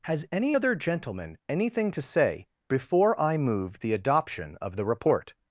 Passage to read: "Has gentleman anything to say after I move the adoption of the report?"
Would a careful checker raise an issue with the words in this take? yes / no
yes